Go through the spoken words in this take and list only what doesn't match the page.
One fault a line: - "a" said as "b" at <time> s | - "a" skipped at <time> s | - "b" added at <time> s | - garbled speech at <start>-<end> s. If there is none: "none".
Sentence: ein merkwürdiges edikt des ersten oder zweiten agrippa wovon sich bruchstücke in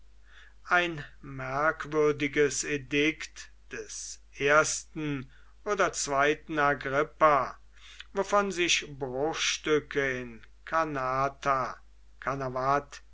none